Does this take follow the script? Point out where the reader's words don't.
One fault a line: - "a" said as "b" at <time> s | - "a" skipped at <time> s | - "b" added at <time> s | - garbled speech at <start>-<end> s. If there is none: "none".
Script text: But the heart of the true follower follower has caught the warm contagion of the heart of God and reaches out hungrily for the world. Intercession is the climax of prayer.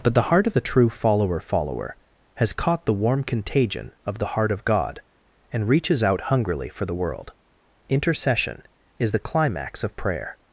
none